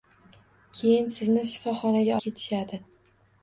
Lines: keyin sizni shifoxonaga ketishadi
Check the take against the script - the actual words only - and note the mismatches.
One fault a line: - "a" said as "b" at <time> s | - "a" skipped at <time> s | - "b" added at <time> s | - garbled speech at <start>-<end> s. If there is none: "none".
none